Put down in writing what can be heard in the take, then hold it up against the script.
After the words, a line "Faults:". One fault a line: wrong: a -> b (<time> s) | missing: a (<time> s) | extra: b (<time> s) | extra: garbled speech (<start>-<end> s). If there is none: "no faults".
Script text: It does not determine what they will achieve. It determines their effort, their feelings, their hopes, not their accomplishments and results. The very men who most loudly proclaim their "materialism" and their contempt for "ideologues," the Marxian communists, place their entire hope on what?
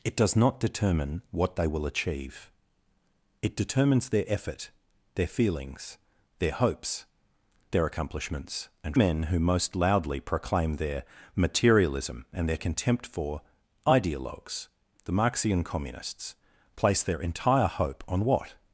It does not determine what they will achieve. It determines their effort, their feelings, their hopes, their accomplishments and men who most loudly proclaim their "materialism" and their contempt for "ideologues," the Marxian communists, place their entire hope on what?
Faults:
missing: not (7.0 s)
missing: results The very (9.0 s)